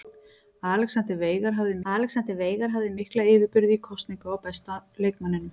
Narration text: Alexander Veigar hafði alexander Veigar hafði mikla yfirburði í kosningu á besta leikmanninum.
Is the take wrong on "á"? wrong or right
right